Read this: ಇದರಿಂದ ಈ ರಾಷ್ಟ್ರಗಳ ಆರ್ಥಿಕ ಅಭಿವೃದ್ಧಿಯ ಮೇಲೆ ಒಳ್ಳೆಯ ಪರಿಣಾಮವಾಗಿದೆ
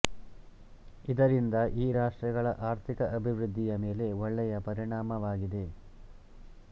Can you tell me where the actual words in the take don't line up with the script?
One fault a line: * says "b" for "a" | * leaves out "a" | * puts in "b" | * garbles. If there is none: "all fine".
all fine